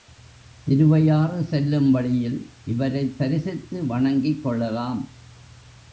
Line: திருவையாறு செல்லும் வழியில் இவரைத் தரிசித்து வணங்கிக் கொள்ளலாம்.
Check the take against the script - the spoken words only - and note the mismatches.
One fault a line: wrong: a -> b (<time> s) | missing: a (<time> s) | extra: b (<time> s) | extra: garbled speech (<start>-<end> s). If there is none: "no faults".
no faults